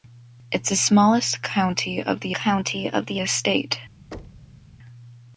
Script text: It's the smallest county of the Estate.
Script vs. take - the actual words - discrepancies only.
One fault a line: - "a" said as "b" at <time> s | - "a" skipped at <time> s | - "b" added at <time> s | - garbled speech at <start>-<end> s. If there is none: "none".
- "county of the" added at 2.3 s